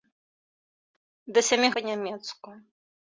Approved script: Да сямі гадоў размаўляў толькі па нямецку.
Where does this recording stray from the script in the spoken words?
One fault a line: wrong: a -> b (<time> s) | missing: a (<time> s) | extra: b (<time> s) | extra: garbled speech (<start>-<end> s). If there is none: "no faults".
missing: гадоў размаўляў толькі (1.7 s)